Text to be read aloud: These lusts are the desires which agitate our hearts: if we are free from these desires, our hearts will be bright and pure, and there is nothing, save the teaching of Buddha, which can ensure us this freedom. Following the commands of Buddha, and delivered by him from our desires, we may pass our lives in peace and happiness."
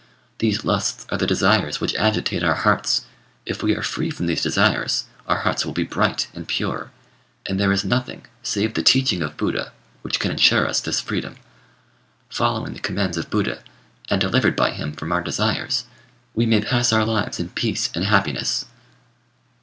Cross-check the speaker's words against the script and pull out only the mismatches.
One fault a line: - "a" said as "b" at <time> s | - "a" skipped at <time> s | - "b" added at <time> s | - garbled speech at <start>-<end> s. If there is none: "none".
none